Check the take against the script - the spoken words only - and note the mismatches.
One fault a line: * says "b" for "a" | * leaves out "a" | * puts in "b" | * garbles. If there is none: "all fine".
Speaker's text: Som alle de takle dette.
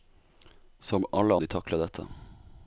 all fine